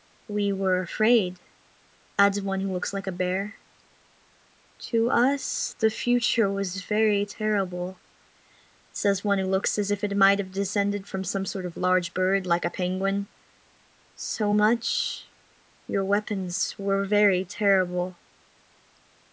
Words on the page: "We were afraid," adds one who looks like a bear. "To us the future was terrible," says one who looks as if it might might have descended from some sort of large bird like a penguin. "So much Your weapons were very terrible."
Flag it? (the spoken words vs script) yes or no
yes